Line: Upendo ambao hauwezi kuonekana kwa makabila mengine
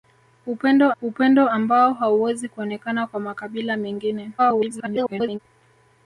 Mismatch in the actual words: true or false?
true